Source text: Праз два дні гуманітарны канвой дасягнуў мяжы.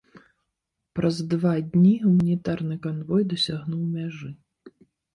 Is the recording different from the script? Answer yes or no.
no